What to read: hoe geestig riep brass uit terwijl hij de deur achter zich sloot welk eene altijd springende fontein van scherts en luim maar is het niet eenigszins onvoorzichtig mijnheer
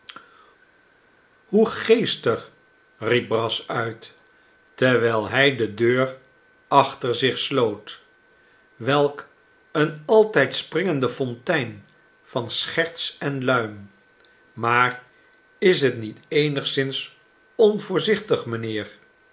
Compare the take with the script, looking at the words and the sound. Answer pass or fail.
pass